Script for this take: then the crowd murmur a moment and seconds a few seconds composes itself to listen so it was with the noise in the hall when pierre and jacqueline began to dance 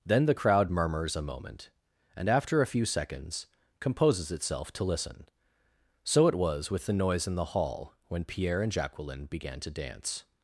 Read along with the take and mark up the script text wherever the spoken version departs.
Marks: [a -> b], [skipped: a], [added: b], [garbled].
then the crowd [murmur -> murmurs] a moment and [seconds -> after] a few seconds composes itself to listen so it was with the noise in the hall when pierre and jacqueline began to dance